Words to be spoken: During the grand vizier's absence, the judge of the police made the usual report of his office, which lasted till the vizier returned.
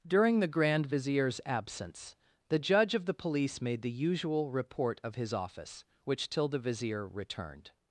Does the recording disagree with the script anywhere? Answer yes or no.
yes